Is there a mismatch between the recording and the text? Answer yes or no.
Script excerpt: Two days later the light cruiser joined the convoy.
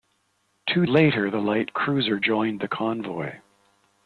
yes